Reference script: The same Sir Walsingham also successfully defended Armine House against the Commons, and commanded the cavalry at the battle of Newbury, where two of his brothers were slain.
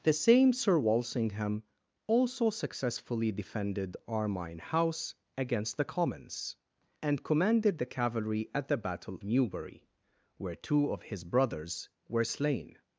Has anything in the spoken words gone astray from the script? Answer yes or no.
yes